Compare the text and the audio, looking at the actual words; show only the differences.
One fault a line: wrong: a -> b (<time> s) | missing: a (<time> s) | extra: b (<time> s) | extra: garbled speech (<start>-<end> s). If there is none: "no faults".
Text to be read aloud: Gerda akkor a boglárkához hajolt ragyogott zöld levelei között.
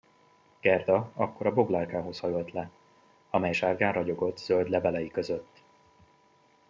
extra: le amely sárgán (2.5 s)